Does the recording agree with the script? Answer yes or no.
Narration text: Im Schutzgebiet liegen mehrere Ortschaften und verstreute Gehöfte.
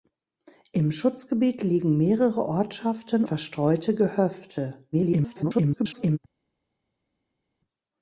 no